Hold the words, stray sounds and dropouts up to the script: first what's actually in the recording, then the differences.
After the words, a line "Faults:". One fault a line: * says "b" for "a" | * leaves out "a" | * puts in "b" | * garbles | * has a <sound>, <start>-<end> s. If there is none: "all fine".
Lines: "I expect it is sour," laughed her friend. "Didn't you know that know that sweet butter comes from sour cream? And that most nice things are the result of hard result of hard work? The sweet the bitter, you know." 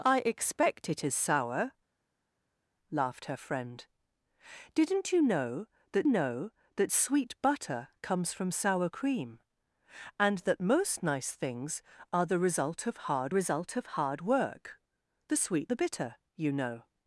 "I expect it is sour," laughed her friend. "Didn't you know that know that sweet butter comes from sour cream? And that most nice things are the result of hard result of hard work? The sweet the bitter, you know."
Faults:
all fine